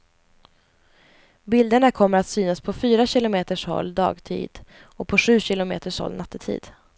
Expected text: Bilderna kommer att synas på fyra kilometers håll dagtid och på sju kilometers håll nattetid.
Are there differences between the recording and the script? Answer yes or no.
no